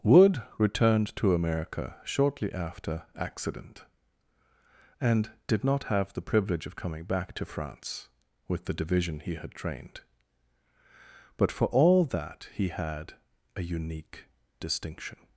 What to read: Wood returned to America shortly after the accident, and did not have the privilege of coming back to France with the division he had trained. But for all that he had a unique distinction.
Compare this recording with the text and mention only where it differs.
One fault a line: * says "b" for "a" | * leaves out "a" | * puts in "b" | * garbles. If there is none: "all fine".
* leaves out "the"